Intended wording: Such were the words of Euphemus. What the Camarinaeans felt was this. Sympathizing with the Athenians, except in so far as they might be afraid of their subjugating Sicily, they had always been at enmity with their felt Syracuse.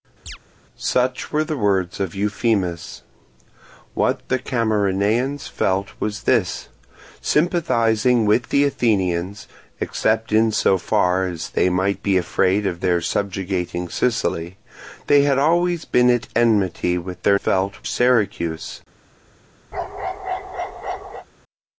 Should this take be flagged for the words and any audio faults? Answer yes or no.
yes